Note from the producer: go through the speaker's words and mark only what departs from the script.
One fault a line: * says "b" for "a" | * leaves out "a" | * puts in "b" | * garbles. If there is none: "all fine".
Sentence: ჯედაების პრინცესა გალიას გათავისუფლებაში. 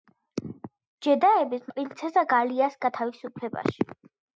all fine